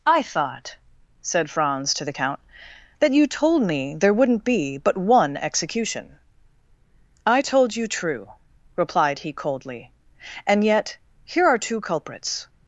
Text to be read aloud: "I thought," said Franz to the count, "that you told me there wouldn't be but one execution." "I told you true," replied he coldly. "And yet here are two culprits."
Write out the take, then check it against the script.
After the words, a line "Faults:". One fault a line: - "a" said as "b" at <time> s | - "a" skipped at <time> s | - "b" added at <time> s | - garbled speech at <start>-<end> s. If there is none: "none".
"I thought," said Franz to the count, "that you told me there wouldn't be but one execution." "I told you true," replied he coldly. "And yet here are two culprits."
Faults:
none